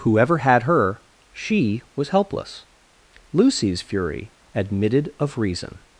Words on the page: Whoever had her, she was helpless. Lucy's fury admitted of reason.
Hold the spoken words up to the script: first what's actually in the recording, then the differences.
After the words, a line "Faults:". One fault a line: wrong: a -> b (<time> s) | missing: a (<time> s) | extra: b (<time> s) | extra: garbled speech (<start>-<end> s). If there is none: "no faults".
Whoever had her, she was helpless. Lucy's fury admitted of reason.
Faults:
no faults